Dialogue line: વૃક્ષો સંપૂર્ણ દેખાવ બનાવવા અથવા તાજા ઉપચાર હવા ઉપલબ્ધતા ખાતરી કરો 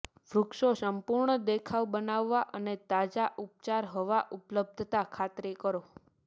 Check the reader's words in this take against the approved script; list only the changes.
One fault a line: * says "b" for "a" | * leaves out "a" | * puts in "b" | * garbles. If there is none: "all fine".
* says "અને" for "અથવા"